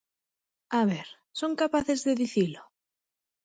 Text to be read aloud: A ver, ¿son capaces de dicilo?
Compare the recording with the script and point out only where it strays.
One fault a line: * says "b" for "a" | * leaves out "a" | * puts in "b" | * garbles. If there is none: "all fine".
all fine